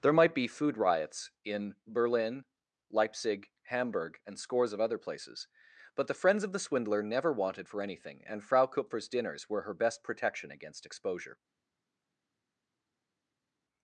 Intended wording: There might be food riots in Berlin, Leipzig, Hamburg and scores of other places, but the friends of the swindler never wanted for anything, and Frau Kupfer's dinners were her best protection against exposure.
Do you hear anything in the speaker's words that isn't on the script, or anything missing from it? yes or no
no